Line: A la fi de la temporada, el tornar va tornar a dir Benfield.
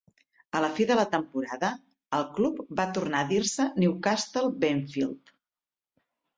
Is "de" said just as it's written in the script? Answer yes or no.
yes